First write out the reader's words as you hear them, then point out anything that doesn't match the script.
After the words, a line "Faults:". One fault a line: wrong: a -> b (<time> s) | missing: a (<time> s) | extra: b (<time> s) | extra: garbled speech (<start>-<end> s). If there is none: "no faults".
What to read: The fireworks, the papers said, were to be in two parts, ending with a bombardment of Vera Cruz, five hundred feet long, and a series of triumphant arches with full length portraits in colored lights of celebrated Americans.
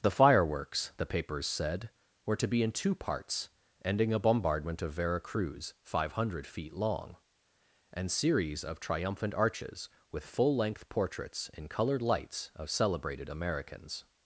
The fireworks, the papers said, were to be in two parts, ending a bombardment of Vera Cruz, five hundred feet long, and series of triumphant arches with full length portraits in colored lights of celebrated Americans.
Faults:
missing: with (4.1 s)
missing: a (8.1 s)